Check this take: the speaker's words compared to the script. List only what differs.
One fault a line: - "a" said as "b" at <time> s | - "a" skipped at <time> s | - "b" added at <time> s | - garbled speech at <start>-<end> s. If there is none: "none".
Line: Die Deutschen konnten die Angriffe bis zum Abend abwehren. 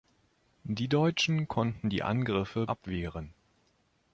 - "bis zum Abend" skipped at 2.6 s